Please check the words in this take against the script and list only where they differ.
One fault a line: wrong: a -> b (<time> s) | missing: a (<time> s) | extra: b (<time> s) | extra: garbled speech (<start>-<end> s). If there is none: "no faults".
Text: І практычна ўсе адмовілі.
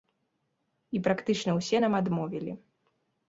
extra: нам (1.9 s)